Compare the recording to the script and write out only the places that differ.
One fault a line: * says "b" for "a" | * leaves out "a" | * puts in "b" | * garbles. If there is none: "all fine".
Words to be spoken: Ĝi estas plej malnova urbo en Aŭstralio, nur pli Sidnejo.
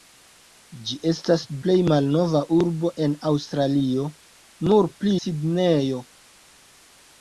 all fine